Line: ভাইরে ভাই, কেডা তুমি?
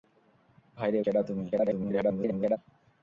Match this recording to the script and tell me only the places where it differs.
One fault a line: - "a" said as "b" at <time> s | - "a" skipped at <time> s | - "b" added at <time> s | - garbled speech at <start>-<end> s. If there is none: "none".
- "ভাই" skipped at 1.0 s
- garbled speech at 1.5-2.6 s